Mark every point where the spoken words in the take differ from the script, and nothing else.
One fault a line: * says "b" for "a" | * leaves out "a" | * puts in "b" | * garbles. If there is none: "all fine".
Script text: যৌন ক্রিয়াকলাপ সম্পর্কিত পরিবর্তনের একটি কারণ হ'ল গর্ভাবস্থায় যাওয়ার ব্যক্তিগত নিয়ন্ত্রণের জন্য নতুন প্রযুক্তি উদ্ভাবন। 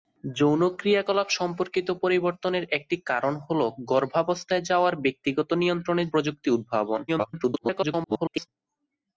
* leaves out "জন্য নতুন"
* garbles